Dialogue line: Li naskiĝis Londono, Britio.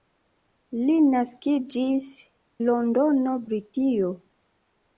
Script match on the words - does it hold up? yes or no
yes